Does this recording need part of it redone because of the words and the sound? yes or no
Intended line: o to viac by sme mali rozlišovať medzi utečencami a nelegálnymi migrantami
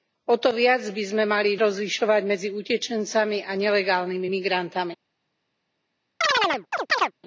yes